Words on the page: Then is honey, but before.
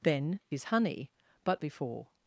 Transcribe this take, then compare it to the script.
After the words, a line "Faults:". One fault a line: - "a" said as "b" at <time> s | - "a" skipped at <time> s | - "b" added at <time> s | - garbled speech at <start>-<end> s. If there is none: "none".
Then is honey, but before.
Faults:
none